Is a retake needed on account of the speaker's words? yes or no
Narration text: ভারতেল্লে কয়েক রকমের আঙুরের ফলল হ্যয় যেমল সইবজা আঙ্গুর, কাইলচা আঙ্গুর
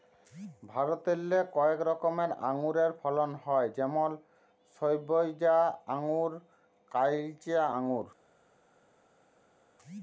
no